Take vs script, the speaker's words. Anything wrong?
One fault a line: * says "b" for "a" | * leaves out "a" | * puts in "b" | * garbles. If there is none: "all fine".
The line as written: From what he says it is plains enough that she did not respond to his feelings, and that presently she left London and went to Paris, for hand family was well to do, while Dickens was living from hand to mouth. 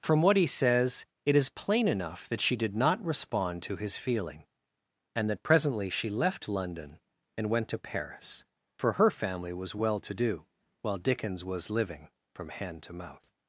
* says "plain" for "plains"
* says "feeling" for "feelings"
* says "her" for "hand"